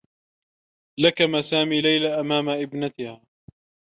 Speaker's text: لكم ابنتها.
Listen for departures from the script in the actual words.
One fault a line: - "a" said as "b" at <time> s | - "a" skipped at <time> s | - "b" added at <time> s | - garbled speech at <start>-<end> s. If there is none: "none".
- "سامي ليلى أمام" added at 1.4 s